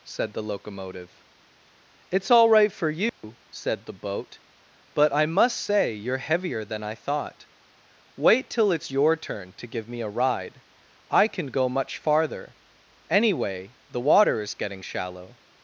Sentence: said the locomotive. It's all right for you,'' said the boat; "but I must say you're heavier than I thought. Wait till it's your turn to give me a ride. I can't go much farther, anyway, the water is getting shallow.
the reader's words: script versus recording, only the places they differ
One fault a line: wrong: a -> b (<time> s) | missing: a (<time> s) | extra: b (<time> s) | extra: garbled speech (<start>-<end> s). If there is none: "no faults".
wrong: can't -> can (11.3 s)